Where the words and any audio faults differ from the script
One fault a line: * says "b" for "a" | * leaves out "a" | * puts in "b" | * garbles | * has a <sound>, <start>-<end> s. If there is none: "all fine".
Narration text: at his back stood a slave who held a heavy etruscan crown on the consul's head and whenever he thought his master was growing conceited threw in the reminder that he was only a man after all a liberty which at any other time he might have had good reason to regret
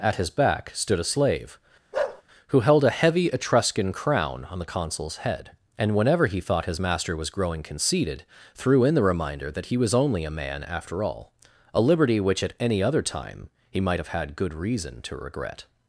* has a bark, 1.9-2.2 s